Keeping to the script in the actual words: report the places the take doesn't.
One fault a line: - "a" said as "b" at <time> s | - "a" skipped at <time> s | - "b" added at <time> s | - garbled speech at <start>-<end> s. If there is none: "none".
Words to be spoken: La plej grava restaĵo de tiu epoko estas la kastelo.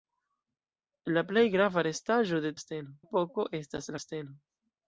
- "tiu" said as "kastelo" at 2.5 s
- "la" skipped at 3.9 s